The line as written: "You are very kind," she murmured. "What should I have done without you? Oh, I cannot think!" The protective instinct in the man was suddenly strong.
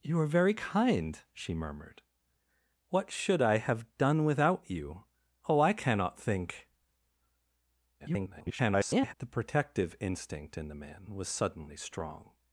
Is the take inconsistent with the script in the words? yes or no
yes